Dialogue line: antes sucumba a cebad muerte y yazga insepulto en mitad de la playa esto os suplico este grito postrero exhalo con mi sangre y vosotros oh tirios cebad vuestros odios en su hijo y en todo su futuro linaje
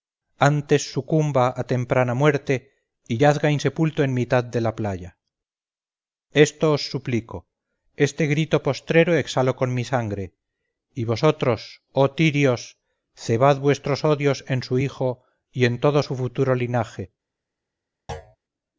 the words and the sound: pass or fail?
fail